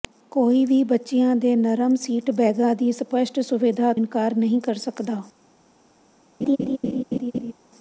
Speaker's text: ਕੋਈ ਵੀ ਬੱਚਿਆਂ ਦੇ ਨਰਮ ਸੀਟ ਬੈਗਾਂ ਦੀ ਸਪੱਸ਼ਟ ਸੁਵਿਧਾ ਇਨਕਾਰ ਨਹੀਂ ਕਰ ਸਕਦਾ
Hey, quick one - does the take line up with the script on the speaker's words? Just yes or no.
yes